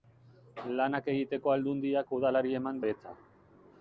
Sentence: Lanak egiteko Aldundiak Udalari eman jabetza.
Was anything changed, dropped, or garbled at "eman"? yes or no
no